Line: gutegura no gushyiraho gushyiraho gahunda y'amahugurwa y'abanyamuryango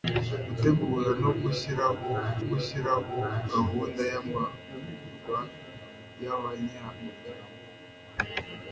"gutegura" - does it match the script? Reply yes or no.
yes